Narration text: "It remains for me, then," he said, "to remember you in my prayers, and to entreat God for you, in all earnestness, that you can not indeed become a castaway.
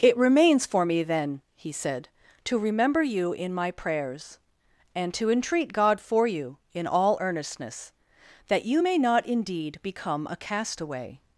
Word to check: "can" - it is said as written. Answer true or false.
false